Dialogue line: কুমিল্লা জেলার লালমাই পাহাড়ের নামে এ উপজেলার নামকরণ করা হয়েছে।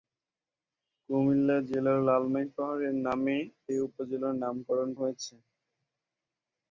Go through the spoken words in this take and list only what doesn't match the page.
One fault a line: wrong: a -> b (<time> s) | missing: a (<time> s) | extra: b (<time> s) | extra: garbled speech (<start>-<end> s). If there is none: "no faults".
missing: করা (4.9 s)